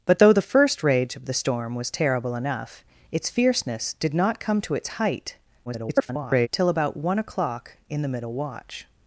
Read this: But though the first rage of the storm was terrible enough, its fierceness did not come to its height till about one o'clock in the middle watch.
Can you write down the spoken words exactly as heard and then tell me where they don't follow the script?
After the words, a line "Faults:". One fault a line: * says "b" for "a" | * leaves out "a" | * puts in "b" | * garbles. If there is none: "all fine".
But though the first rage of the storm was terrible enough, its fierceness did not come to its height [garbled] till about one o'clock in the middle watch.
Faults:
* garbles